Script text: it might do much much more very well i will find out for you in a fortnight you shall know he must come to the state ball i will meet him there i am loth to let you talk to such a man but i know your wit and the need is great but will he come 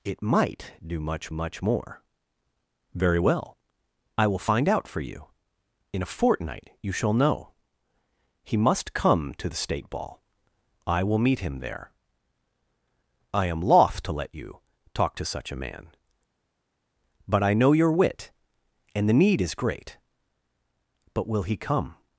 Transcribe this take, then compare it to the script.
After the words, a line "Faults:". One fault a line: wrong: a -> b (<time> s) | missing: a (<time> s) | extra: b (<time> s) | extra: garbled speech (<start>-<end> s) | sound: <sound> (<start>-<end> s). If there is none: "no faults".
it might do much much more very well i will find out for you in a fortnight you shall know he must come to the state ball i will meet him there i am loth to let you talk to such a man but i know your wit and the need is great but will he come
Faults:
no faults